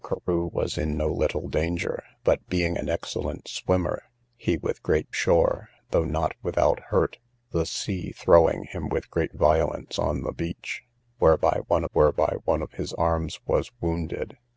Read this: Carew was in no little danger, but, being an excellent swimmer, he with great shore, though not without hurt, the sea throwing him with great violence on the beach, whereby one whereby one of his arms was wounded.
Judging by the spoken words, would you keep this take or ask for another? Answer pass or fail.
pass